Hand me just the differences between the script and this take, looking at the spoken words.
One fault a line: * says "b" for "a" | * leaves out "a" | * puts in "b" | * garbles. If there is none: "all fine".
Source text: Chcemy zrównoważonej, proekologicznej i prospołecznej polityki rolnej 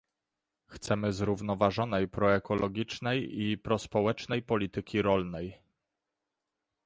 all fine